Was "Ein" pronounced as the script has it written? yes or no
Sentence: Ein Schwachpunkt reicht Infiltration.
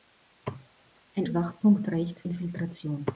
yes